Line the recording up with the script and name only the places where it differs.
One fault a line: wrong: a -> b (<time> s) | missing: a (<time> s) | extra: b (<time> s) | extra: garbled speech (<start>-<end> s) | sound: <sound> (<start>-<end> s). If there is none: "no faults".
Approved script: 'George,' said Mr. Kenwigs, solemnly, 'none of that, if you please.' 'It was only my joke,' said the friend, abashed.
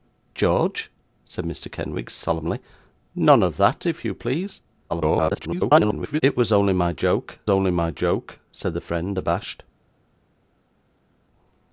extra: garbled speech (4.9-6.2 s)
extra: only my joke (7.5 s)